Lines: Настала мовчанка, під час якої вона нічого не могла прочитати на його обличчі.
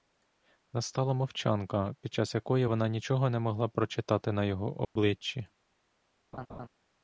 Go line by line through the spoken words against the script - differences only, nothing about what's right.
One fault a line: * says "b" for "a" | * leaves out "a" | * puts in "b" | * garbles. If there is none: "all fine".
all fine